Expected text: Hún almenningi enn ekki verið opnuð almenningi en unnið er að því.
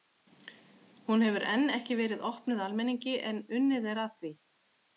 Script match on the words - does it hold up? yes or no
no